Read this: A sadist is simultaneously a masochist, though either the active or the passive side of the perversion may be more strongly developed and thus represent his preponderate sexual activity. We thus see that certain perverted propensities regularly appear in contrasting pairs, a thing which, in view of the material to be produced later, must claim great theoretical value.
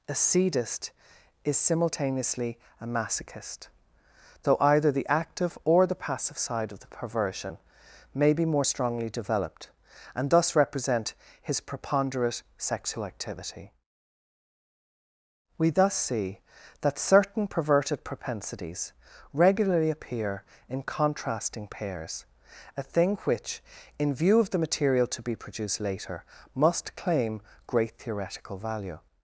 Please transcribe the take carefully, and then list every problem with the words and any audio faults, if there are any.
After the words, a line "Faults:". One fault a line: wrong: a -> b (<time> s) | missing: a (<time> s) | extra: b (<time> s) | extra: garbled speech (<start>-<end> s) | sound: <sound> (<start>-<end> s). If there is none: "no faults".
A sadist is simultaneously a masochist, though either the active or the passive side of the perversion may be more strongly developed and thus represent his preponderate sexual activity. We thus see that certain perverted propensities regularly appear in contrasting pairs, a thing which, in view of the material to be produced later, must claim great theoretical value.
Faults:
no faults